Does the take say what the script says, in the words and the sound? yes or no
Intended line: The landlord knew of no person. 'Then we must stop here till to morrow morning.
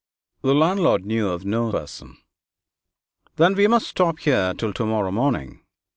yes